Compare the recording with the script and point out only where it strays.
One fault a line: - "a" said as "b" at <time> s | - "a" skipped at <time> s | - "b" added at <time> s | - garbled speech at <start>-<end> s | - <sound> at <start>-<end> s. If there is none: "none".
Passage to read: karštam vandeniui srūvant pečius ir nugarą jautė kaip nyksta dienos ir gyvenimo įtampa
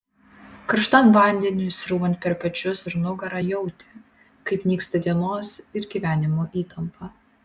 - "per" added at 2.2 s